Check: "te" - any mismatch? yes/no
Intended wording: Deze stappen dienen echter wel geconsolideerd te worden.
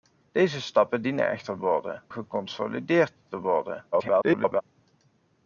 no